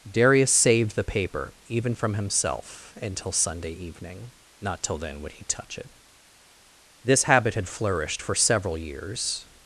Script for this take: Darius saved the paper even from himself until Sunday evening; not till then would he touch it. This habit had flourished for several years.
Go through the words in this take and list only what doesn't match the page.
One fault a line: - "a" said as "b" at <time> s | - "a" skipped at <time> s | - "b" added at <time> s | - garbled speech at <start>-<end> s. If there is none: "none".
none